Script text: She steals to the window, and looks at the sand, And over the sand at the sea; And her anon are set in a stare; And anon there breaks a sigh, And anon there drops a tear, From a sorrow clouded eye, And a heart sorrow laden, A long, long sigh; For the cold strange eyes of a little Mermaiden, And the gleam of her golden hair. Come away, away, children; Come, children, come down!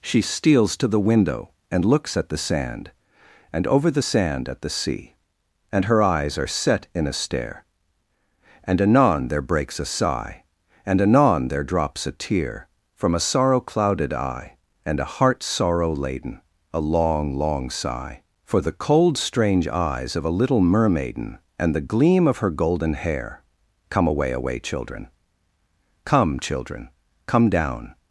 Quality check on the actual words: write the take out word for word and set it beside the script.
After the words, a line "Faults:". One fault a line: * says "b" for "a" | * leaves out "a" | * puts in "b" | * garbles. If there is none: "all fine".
She steals to the window, and looks at the sand, And over the sand at the sea; And her eyes are set in a stare; And anon there breaks a sigh, And anon there drops a tear, From a sorrow clouded eye, And a heart sorrow laden, A long, long sigh; For the cold strange eyes of a little Mermaiden, And the gleam of her golden hair. Come away, away, children; Come, children, come down!
Faults:
* says "eyes" for "anon"